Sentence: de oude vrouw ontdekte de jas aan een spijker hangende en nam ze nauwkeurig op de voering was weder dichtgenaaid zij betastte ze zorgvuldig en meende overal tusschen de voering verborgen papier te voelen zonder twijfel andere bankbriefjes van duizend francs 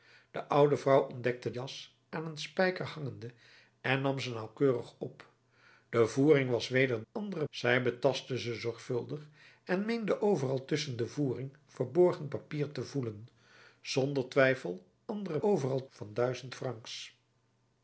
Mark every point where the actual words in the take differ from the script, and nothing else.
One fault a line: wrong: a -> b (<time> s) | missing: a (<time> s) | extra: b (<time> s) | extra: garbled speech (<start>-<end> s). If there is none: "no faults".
missing: de (1.5 s)
wrong: dichtgenaaid -> andere (7.1 s)
wrong: bankbriefjes -> overal (15.4 s)